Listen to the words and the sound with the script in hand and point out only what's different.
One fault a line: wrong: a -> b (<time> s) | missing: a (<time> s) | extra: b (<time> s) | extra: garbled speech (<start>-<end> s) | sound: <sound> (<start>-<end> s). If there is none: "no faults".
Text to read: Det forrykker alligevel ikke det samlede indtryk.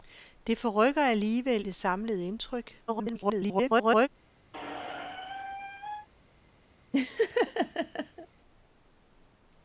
missing: ikke (1.6 s)
extra: garbled speech (2.9-4.1 s)
sound: squeak (4.5-6.1 s)
sound: laugh (6.9-8.3 s)